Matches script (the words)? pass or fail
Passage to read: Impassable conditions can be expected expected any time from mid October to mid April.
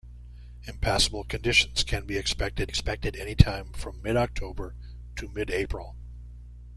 pass